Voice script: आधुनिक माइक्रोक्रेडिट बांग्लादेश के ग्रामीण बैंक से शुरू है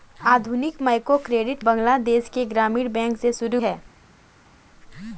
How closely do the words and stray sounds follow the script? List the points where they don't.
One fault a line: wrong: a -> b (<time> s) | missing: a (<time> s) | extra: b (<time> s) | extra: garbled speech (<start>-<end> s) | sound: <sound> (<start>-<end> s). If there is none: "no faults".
no faults